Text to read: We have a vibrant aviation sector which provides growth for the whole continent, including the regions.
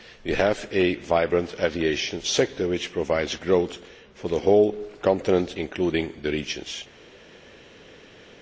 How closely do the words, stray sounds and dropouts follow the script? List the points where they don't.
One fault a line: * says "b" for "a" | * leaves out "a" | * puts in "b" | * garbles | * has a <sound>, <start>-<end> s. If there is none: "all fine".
all fine